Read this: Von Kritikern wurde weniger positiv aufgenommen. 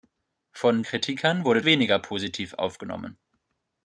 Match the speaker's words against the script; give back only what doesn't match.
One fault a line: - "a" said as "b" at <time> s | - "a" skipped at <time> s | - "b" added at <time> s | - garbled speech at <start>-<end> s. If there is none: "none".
none